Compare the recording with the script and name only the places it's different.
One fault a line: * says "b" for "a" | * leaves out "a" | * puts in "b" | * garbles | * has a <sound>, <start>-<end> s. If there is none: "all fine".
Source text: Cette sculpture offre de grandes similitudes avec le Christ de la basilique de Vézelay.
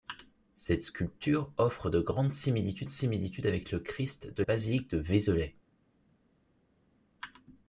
* puts in "similitudes"
* leaves out "la"